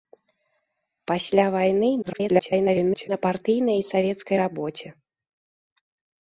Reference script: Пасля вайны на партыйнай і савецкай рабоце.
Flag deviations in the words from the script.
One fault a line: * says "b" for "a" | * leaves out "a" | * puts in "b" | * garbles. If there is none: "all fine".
* garbles